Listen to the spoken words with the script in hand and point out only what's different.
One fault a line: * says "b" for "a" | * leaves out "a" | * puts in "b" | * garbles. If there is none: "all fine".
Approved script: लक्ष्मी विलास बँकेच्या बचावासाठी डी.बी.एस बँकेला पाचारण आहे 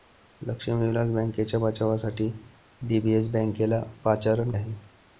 all fine